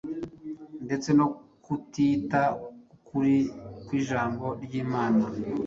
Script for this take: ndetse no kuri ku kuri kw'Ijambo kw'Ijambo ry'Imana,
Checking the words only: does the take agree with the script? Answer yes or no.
no